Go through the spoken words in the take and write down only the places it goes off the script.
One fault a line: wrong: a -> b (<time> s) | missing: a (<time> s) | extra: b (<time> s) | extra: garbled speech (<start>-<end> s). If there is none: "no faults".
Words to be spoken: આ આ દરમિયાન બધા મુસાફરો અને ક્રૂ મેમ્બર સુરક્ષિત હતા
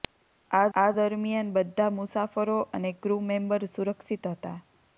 no faults